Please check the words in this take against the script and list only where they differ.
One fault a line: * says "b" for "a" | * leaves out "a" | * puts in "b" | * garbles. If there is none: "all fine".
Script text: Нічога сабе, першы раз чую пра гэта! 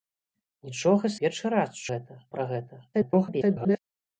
* leaves out "сабе"
* says "гэта" for "чую"
* garbles